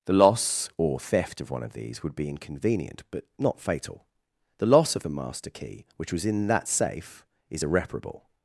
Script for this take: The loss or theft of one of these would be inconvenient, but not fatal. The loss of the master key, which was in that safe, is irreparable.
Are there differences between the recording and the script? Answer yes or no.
no